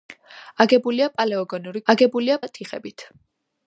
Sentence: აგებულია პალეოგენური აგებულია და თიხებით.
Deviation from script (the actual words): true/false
false